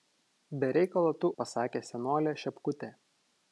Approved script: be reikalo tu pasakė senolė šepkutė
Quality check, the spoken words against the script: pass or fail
pass